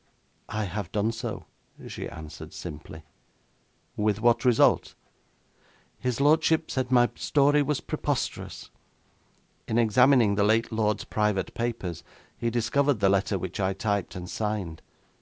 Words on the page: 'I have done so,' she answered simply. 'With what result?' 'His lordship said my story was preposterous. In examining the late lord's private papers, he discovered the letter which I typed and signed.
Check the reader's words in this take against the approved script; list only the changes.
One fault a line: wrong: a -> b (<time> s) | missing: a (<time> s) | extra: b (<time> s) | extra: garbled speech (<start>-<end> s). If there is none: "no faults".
no faults